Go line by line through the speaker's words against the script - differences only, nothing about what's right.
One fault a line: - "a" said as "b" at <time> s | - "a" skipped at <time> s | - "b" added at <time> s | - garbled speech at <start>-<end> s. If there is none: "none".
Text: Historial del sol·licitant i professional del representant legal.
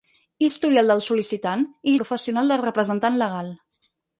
none